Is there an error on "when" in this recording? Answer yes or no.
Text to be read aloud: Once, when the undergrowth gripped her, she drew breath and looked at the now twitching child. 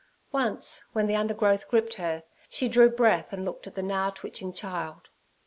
no